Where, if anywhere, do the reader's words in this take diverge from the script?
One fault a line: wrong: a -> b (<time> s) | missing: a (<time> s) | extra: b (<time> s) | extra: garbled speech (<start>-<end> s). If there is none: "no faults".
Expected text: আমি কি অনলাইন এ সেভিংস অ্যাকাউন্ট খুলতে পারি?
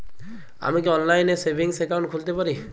no faults